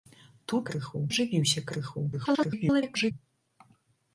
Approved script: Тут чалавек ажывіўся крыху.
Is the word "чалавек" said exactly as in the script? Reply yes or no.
no